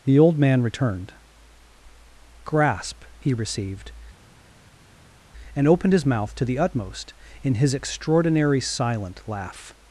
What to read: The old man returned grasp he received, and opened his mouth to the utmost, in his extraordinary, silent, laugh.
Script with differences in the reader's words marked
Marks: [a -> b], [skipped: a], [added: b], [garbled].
The old man returned grasp he received, and opened his mouth to the utmost, in his extraordinary, silent, laugh.